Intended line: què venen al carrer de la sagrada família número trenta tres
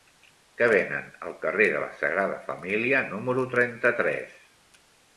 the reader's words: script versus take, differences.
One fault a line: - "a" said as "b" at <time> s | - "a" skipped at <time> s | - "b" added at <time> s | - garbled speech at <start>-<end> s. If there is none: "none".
none